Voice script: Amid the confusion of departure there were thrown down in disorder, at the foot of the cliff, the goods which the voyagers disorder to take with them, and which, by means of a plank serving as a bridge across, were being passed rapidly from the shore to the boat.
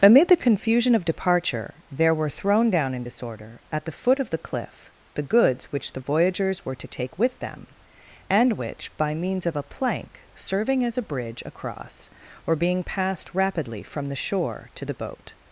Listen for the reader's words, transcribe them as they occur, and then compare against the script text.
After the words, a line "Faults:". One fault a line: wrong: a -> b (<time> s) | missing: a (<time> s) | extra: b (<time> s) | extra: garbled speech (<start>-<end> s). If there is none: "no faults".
Amid the confusion of departure there were thrown down in disorder, at the foot of the cliff, the goods which the voyagers were to take with them, and which, by means of a plank serving as a bridge across, were being passed rapidly from the shore to the boat.
Faults:
wrong: disorder -> were (6.6 s)